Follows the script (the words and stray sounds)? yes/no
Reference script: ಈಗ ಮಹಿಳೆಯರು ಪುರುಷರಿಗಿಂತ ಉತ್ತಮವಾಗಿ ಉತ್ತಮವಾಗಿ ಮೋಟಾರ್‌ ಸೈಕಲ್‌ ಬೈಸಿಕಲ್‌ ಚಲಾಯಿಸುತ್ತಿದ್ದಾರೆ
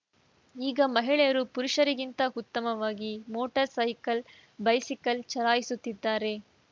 no